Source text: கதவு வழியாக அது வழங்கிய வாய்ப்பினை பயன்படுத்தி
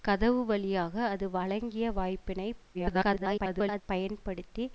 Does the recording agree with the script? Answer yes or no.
no